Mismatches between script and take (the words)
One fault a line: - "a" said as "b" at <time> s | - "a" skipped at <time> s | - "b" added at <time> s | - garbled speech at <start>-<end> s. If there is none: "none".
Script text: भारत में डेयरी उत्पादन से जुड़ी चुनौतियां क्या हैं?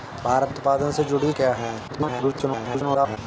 - "में डेयरी" skipped at 0.5 s
- "चुनौतियां" skipped at 1.3 s
- garbled speech at 1.9-3.2 s